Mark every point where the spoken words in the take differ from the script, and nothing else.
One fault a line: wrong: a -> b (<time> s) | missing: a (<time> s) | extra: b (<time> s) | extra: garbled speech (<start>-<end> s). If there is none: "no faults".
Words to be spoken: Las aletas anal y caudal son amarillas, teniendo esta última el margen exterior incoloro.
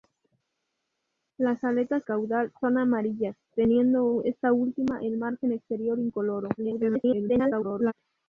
missing: anal y (2.1 s)
extra: garbled speech (6.6-7.9 s)